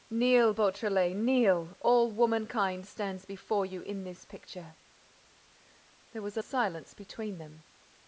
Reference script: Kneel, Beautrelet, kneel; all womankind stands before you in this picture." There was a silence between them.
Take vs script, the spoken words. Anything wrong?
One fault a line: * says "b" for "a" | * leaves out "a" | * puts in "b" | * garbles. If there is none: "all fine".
all fine